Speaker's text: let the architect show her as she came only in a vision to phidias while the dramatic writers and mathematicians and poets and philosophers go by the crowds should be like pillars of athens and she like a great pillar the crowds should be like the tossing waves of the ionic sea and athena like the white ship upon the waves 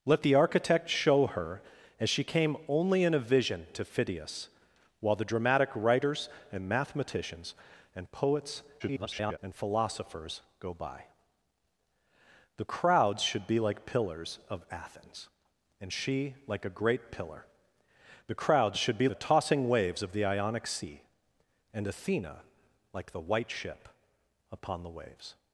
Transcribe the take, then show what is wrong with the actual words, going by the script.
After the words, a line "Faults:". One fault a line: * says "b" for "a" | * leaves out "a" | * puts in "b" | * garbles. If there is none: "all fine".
let the architect show her as she came only in a vision to phidias while the dramatic writers and mathematicians and poets [garbled] and philosophers go by the crowds should be like pillars of athens and she like a great pillar the crowds should be the tossing waves of the ionic sea and athena like the white ship upon the waves
Faults:
* garbles
* leaves out "like"